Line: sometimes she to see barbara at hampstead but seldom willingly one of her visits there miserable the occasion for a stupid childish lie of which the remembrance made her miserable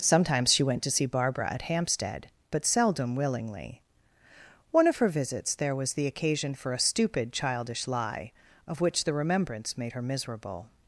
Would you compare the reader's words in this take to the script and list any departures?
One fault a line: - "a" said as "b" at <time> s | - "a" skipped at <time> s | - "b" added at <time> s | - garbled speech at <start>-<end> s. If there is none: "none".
- "went" added at 0.6 s
- "miserable" said as "was" at 5.8 s